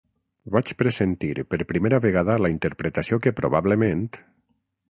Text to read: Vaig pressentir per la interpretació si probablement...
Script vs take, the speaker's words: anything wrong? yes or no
yes